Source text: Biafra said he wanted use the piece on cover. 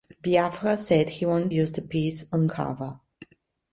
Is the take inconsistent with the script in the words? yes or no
no